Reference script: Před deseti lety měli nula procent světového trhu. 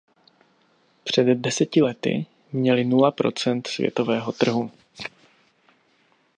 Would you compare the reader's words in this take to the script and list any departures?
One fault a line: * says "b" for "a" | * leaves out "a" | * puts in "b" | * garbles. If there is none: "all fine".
all fine